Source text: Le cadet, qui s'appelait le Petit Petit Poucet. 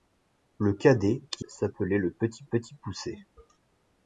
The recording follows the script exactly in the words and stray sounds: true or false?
true